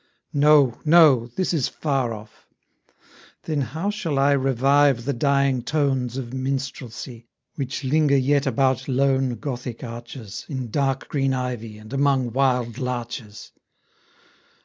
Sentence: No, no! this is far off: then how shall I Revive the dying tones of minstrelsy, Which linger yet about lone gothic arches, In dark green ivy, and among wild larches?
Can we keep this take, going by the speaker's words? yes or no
yes